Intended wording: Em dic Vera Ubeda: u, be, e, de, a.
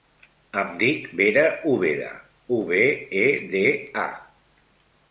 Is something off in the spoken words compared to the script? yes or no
no